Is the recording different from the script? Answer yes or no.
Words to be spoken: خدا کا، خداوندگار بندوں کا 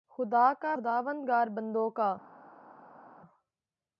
no